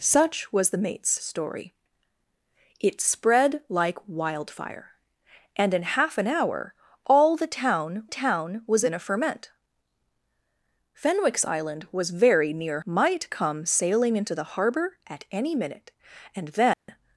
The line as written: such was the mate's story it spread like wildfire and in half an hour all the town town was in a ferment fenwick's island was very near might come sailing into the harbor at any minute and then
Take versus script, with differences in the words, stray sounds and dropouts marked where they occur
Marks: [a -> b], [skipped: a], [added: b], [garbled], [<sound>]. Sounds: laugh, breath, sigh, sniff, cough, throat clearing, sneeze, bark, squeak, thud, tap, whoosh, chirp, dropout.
such was the mate's story it spread like wildfire and in half an hour all the town town was in a ferment fenwick's island was very near might come sailing into the harbor at any minute and then [dropout]